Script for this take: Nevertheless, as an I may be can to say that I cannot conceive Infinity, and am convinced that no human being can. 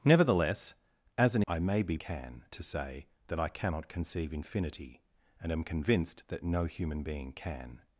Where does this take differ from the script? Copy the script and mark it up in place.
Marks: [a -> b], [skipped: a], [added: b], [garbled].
Nevertheless, as an I may be can to say that I cannot conceive Infinity, and am convinced that no human being can.